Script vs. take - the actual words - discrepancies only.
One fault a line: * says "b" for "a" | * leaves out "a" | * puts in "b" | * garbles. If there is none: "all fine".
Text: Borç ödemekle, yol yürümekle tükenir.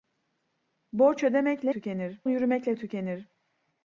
* says "tükenir" for "yol"